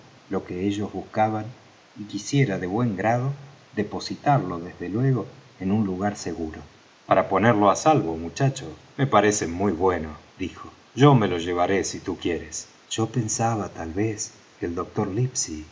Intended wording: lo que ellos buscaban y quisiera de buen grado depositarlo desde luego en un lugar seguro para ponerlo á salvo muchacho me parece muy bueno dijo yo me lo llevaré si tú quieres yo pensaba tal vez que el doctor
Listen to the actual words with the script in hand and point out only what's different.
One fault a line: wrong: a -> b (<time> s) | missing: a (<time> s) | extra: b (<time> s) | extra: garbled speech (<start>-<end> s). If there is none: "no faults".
no faults